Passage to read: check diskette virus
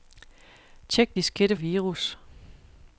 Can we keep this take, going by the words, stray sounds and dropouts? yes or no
yes